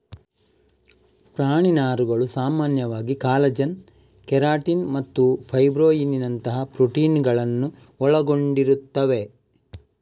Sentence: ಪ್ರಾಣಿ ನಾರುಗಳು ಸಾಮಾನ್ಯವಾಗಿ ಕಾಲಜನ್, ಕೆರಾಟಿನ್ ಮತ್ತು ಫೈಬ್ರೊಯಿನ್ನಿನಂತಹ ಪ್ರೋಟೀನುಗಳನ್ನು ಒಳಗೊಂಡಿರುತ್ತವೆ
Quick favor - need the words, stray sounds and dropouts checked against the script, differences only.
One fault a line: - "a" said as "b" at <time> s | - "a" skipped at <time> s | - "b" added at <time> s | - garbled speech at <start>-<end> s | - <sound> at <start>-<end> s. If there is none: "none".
none